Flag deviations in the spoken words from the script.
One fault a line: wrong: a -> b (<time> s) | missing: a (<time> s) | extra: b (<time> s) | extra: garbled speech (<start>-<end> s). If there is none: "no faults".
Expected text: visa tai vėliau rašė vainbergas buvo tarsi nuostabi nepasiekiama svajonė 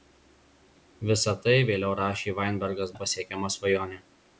missing: buvo tarsi nuostabi (3.0 s)